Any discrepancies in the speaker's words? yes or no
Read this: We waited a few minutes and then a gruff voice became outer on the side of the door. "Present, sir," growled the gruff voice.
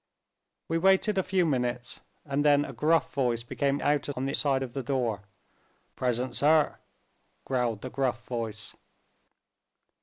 no